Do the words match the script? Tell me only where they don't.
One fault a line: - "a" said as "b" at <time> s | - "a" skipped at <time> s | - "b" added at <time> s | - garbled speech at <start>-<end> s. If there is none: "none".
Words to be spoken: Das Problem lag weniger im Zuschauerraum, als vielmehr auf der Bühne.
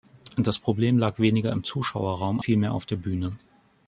- "als" skipped at 2.4 s